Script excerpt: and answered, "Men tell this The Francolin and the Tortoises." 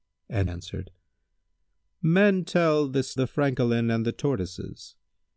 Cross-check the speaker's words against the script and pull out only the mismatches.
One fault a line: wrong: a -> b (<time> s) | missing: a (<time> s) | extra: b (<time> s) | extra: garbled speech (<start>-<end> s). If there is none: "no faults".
no faults